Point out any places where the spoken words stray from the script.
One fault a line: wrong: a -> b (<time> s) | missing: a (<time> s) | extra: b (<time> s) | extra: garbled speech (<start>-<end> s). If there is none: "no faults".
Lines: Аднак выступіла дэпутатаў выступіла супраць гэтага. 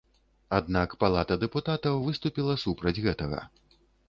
wrong: выступіла -> палата (1.0 s)